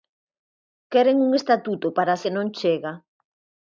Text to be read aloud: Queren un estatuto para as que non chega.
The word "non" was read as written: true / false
true